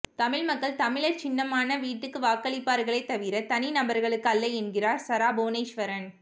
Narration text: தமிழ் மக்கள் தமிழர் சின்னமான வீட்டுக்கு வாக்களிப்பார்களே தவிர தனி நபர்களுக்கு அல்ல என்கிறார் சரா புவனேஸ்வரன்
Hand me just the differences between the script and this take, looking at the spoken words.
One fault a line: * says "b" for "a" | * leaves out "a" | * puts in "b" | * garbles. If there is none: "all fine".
all fine